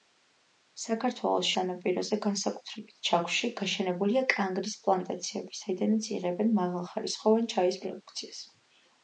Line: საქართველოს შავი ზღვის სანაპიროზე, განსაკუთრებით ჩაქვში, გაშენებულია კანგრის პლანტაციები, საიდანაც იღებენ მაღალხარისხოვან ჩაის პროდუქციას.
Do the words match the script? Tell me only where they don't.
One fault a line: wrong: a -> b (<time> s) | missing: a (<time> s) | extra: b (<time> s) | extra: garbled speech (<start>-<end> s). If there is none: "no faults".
missing: შავი ზღვის (1.5 s)